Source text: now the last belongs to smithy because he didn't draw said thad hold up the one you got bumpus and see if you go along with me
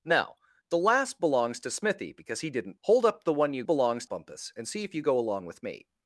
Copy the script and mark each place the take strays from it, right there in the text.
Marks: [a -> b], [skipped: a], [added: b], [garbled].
now the last belongs to smithy because he didn't [skipped: draw said thad] hold up the one you [got -> belongs] bumpus and see if you go along with me